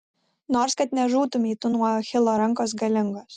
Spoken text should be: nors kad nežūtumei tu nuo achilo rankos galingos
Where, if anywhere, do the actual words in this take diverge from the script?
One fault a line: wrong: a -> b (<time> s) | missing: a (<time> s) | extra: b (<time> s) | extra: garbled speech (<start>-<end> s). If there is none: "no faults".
no faults